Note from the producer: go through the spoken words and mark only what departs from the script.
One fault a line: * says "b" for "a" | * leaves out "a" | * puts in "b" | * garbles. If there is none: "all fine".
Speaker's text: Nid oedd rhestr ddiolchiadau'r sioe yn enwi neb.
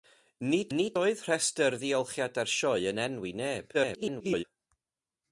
* puts in "nid"
* garbles